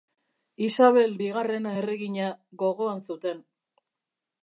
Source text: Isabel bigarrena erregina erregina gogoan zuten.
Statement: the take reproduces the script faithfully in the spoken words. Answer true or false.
false